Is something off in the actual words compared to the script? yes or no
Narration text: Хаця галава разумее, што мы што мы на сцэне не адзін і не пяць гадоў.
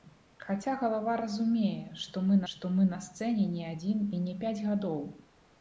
no